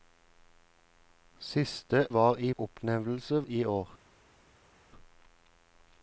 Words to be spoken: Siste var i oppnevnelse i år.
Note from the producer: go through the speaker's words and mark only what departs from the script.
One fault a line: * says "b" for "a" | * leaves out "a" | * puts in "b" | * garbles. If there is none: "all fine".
all fine